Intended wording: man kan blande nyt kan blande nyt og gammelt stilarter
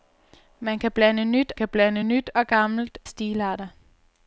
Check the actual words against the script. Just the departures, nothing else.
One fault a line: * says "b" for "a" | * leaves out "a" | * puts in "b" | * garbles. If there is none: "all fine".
all fine